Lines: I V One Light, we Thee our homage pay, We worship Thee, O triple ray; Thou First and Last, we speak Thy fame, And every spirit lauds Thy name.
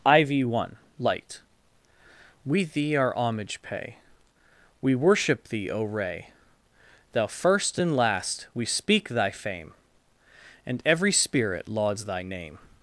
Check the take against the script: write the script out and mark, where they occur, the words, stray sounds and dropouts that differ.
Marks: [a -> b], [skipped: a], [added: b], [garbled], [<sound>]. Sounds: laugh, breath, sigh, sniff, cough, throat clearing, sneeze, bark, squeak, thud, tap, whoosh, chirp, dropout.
I V One Light, we Thee our homage pay, We worship Thee, O [skipped: triple] ray; Thou First and Last, we speak Thy fame, And every spirit lauds Thy name.